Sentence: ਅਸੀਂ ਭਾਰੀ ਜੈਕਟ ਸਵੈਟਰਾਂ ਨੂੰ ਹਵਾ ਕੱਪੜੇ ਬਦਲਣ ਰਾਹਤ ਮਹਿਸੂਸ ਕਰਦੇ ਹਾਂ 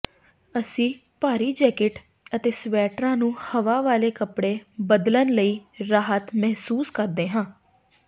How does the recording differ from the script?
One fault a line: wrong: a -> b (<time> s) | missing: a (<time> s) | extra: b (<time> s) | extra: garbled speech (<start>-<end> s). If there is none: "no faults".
extra: ਅਤੇ (2.4 s)
extra: ਵਾਲੇ (3.8 s)
extra: ਲਈ (5.3 s)